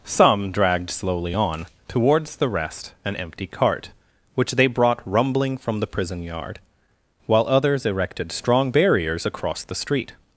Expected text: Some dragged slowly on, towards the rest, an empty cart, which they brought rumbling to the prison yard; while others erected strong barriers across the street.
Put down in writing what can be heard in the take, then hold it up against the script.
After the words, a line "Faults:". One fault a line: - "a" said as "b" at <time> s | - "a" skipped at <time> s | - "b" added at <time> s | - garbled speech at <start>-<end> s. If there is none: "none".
Some dragged slowly on, towards the rest, an empty cart, which they brought rumbling from the prison yard; while others erected strong barriers across the street.
Faults:
- "to" said as "from" at 5.6 s